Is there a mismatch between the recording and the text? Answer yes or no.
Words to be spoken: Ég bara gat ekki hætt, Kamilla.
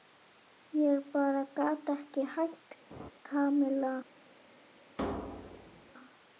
no